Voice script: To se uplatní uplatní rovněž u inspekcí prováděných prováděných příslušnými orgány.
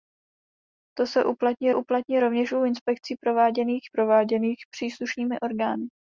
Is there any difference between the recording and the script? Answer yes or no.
no